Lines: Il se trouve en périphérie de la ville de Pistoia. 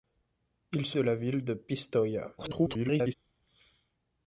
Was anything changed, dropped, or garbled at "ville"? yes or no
no